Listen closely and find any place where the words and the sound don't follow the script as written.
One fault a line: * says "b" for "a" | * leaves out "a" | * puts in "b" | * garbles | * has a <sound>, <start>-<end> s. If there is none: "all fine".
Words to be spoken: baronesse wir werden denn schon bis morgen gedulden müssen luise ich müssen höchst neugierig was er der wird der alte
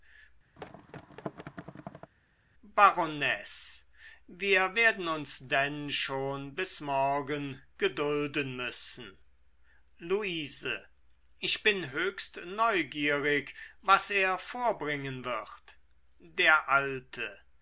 * has a thud, 0.6-2.1 s
* puts in "uns"
* says "bin" for "müssen"
* says "vorbringen" for "der"